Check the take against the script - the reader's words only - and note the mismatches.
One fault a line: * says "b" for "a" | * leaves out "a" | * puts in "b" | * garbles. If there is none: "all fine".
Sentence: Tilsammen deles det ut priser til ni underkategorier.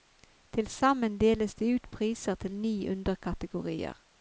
all fine